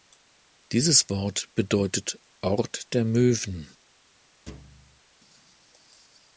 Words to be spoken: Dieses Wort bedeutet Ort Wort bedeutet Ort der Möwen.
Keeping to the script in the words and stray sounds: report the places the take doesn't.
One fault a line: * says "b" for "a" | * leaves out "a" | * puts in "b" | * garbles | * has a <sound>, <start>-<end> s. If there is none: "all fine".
* leaves out "Wort bedeutet Ort"
* has a thud, 4.5-5.0 s